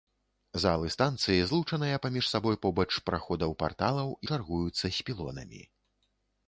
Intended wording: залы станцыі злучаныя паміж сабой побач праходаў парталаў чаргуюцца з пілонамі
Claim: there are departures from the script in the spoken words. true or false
false